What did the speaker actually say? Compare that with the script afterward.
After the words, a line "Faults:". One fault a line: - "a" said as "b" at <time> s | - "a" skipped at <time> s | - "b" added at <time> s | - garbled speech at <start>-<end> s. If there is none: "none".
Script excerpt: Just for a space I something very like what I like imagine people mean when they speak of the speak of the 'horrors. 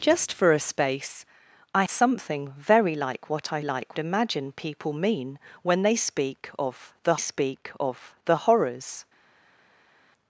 Just for a space I something very like what I like imagine people mean when they speak of the speak of the 'horrors.
Faults:
none